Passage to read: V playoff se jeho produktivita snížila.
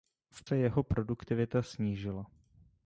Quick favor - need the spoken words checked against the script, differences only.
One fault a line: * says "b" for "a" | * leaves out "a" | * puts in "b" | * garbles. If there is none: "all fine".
* leaves out "playoff"